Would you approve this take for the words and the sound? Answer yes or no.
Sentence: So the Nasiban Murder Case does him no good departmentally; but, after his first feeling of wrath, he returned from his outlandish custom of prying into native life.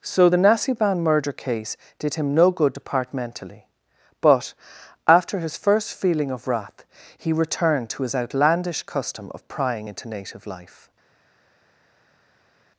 no